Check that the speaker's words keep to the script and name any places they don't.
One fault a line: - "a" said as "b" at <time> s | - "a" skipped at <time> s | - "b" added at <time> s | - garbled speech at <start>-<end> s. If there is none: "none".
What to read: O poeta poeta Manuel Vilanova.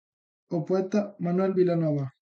- "poeta" skipped at 1.0 s